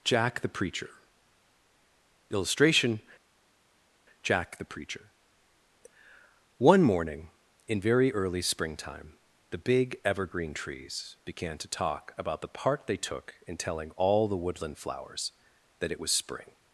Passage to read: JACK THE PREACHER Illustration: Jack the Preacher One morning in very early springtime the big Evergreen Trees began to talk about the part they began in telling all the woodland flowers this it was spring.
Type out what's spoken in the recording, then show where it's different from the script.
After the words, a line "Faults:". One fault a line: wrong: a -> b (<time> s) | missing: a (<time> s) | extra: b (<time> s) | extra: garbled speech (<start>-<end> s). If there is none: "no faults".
JACK THE PREACHER Illustration: Jack the Preacher One morning in very early springtime the big Evergreen Trees began to talk about the part they took in telling all the woodland flowers that it was spring.
Faults:
wrong: began -> took (13.0 s)
wrong: this -> that (15.8 s)